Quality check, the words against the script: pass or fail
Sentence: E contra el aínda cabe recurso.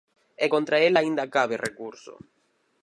pass